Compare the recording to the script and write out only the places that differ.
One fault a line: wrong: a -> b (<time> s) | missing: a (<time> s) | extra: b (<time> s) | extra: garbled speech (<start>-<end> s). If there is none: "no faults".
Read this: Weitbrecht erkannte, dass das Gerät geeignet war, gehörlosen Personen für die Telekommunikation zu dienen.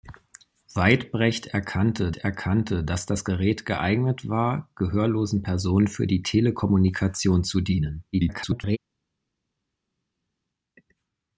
extra: erkannte (2.2 s)
extra: garbled speech (8.1-8.8 s)